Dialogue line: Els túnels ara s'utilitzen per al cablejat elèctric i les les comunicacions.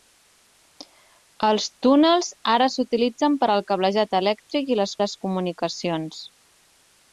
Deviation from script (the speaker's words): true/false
false